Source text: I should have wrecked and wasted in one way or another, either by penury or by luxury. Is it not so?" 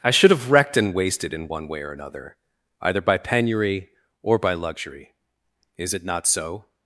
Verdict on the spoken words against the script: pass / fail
pass